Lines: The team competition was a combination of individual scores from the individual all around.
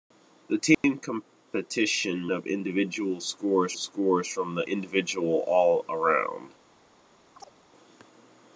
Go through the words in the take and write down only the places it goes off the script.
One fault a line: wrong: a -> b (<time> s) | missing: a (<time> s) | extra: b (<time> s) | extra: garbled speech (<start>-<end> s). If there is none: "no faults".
missing: was a combination (2.3 s)
extra: scores (3.8 s)